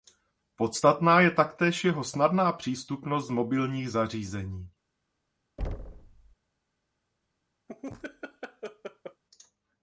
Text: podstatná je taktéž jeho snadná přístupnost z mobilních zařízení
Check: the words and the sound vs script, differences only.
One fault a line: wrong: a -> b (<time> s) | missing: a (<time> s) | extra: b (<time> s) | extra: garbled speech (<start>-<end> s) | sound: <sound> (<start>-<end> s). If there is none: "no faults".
sound: thud (5.6-6.4 s)
sound: laugh (7.7-9.2 s)